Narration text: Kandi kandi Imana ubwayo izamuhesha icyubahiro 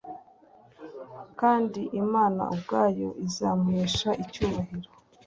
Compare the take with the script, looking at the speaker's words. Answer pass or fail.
fail